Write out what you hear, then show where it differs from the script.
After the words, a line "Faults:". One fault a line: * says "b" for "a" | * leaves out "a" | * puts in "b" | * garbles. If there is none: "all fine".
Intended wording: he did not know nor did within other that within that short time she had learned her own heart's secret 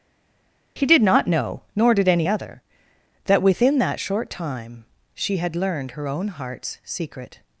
he did not know nor did any other that within that short time she had learned her own heart's secret
Faults:
* says "any" for "within"